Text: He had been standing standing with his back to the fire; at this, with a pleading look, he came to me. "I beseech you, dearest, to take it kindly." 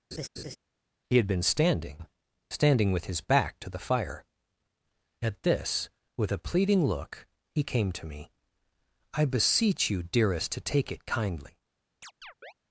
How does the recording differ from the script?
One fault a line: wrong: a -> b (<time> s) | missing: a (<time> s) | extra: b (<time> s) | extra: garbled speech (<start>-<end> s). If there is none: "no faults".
no faults